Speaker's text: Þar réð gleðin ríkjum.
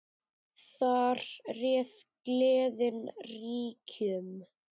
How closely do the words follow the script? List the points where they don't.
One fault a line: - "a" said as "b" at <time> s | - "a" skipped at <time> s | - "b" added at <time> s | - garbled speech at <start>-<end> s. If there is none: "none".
none